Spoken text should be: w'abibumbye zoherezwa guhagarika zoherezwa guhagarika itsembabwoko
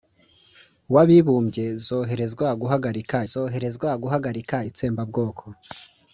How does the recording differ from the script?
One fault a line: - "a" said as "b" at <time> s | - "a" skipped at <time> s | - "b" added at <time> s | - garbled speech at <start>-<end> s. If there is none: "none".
none